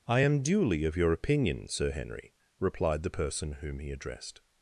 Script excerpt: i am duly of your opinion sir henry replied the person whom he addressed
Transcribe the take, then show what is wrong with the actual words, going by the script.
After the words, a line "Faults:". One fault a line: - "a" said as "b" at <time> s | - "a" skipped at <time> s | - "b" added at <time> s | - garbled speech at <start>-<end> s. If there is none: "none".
i am duly of your opinion sir henry replied the person whom he addressed
Faults:
none